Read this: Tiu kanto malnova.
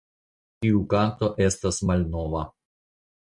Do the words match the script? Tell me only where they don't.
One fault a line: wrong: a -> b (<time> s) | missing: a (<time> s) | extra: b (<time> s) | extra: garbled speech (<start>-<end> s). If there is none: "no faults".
extra: estas (1.5 s)